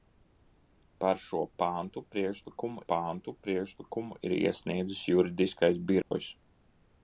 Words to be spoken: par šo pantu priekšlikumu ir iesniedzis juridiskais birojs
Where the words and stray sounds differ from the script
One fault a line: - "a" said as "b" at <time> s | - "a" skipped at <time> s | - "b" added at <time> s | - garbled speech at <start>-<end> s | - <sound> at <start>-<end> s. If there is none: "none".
- "pantu priekšlikumu" added at 2.9 s
- dropout at 6.0-6.1 s